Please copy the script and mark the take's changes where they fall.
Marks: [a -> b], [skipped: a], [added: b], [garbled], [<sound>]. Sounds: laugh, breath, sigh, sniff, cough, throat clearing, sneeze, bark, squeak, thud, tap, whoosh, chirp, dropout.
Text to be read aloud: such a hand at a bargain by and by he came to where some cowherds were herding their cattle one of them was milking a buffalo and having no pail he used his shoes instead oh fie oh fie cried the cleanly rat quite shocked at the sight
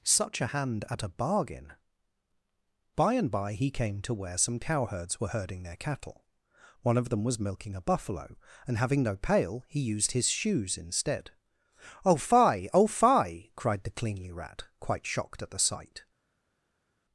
such a hand at a bargain by and by he came to where some cowherds were herding their cattle one of them was milking a buffalo and having no pail he used his shoes instead oh fie oh fie cried the cleanly rat quite shocked at the sight